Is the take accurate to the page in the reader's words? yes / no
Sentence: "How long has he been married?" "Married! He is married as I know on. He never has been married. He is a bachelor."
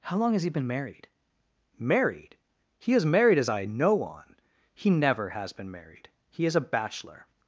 yes